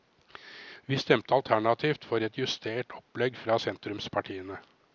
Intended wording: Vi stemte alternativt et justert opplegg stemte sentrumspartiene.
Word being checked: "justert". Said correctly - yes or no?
yes